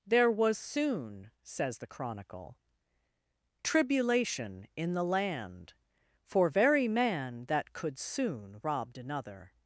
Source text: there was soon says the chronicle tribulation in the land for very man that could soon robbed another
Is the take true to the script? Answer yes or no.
yes